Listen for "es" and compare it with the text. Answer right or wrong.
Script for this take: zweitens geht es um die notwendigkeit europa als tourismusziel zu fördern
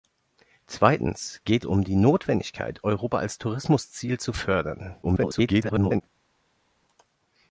wrong